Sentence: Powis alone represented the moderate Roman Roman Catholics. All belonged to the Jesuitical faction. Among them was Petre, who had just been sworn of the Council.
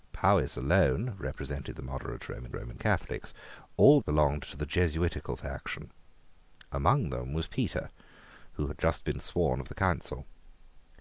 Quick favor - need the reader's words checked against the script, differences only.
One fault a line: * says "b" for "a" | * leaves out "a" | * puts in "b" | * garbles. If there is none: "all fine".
all fine